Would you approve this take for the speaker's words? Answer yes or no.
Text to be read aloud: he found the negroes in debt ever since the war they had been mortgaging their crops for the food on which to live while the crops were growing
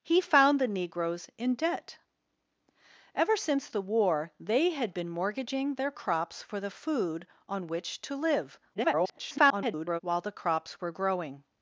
no